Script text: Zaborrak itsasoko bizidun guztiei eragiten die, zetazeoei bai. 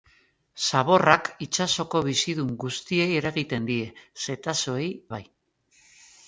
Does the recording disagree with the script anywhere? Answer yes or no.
no